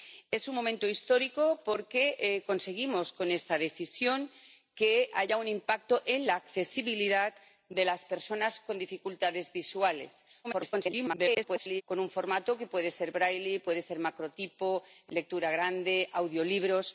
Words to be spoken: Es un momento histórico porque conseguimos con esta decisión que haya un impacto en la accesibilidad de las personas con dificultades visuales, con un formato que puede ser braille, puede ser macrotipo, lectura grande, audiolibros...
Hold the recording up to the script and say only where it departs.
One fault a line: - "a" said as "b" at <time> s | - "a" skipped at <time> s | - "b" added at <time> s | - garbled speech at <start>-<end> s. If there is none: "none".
- garbled speech at 10.4-11.8 s